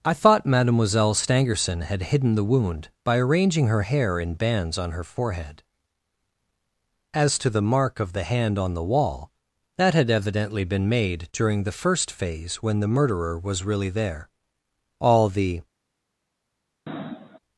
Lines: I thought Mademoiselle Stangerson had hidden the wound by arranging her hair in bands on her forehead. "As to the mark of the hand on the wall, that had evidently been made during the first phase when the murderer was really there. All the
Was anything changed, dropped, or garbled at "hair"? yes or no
no